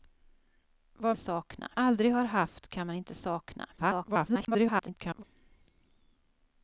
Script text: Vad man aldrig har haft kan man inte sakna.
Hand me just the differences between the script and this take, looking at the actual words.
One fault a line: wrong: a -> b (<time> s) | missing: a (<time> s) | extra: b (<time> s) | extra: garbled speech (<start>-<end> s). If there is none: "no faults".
wrong: man -> sakna (1.2 s)
extra: garbled speech (3.8-5.2 s)